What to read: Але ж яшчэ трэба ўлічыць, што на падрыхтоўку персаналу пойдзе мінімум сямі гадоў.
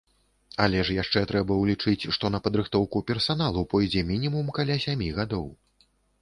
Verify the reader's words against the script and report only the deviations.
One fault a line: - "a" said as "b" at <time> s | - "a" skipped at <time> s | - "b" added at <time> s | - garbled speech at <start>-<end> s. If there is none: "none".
- "каля" added at 4.6 s